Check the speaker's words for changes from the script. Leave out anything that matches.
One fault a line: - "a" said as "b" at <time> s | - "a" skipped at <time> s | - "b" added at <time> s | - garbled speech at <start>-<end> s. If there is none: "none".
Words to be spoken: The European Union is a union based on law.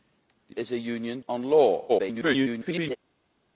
- "European Union" skipped at 0.6 s
- "based" skipped at 1.2 s
- garbled speech at 1.9-3.0 s